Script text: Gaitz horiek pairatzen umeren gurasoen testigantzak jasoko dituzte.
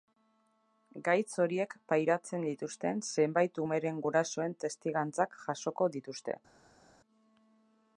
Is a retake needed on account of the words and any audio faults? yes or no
yes